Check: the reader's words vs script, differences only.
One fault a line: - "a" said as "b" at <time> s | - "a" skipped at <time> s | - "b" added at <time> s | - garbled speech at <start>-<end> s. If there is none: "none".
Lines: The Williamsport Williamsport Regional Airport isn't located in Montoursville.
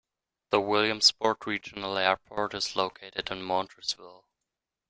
- "Williamsport" skipped at 1.5 s
- "isn't" said as "is" at 2.5 s